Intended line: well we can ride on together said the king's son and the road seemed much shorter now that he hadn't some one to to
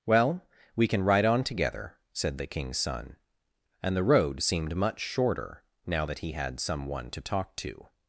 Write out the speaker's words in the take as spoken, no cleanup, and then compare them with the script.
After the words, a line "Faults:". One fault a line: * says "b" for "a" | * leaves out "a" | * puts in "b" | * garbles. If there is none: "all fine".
well we can ride on together said the king's son and the road seemed much shorter now that he had some one to talk to
Faults:
* says "had" for "hadn't"
* puts in "talk"